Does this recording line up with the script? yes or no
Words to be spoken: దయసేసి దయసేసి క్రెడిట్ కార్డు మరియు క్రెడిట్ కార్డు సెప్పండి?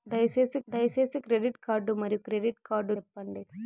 yes